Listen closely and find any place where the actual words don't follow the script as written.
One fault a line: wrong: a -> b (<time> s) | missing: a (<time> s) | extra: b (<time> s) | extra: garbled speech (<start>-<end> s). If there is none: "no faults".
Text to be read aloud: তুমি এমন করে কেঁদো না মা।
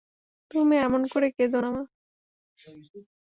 no faults